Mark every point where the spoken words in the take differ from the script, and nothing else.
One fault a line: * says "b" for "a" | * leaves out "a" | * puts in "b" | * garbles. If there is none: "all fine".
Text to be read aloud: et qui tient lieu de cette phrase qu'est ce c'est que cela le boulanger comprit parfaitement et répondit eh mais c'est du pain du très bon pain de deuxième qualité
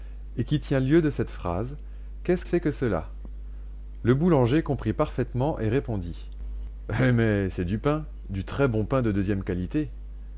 all fine